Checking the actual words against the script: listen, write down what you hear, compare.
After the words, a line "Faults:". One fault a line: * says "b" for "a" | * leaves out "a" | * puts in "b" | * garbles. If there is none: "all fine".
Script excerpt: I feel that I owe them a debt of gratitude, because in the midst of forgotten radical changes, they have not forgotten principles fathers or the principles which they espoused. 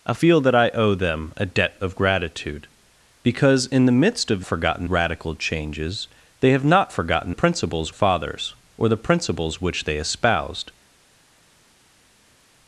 I feel that I owe them a debt of gratitude, because in the midst of forgotten radical changes, they have not forgotten principles fathers or the principles which they espoused.
Faults:
all fine